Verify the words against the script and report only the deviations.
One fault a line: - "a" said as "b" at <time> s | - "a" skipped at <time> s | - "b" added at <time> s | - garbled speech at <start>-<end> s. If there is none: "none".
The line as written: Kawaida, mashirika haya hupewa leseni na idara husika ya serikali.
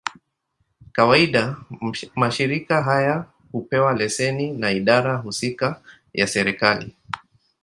none